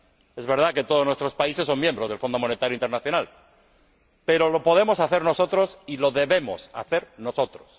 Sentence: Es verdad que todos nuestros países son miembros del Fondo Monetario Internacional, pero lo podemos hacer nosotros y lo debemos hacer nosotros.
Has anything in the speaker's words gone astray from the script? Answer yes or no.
no